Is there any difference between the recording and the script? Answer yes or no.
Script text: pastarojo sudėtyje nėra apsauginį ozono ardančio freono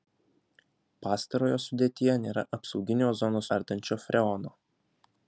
no